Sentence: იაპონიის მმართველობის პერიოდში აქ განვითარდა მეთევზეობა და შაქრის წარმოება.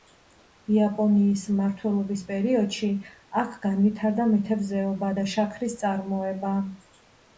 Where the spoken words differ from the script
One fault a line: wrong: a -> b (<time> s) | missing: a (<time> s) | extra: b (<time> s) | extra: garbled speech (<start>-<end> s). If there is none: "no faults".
no faults